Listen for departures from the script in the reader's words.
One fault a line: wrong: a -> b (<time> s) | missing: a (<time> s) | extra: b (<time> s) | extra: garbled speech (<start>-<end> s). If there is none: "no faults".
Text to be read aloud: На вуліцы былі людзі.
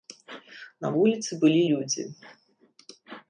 no faults